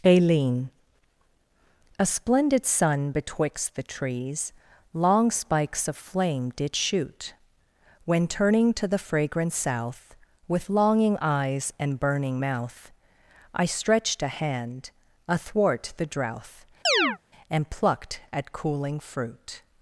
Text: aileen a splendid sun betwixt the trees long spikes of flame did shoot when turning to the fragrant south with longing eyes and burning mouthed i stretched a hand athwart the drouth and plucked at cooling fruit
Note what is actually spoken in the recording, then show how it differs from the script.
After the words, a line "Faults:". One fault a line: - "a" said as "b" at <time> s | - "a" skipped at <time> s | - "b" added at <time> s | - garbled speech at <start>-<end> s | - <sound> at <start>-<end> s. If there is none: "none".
aileen a splendid sun betwixt the trees long spikes of flame did shoot when turning to the fragrant south with longing eyes and burning mouth i stretched a hand athwart the drouth and plucked at cooling fruit
Faults:
- "mouthed" said as "mouth" at 12.4 s
- chirp at 16.8-17.2 s